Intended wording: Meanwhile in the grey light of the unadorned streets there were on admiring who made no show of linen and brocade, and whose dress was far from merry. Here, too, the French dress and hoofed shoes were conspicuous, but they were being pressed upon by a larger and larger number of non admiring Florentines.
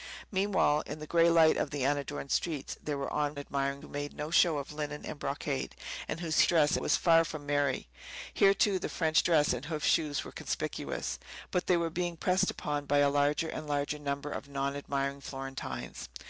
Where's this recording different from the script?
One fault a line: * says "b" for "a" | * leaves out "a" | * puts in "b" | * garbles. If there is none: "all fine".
all fine